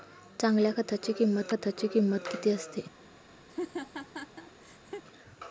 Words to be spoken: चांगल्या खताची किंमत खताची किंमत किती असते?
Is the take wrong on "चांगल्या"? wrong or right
right